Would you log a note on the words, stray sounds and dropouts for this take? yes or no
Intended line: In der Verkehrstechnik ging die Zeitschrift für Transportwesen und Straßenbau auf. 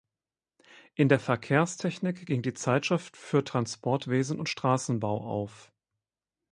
no